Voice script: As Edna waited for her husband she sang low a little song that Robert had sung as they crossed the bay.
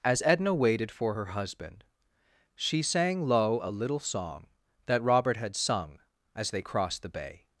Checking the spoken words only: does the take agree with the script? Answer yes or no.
yes